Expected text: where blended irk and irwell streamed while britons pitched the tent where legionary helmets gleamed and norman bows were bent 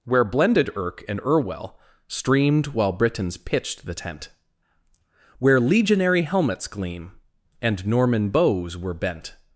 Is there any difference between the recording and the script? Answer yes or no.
yes